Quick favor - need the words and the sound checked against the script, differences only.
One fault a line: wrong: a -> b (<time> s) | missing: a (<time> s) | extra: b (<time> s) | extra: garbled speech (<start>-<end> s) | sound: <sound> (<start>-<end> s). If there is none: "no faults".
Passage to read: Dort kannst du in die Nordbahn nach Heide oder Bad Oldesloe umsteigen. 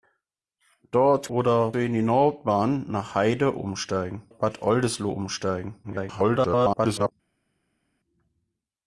wrong: kannst -> oder (1.3 s)
wrong: oder -> umsteigen (3.5 s)
extra: garbled speech (5.8-7.1 s)